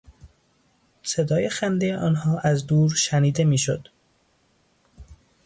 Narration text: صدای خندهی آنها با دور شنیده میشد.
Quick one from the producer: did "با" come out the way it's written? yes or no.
no